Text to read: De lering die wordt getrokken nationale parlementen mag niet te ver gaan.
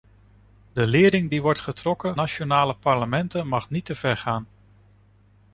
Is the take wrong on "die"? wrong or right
right